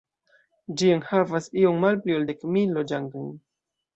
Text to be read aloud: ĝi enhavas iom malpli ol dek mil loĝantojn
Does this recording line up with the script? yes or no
yes